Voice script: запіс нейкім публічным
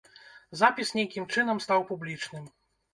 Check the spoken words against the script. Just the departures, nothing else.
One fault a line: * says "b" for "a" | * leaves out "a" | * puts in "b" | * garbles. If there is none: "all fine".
* puts in "чынам стаў"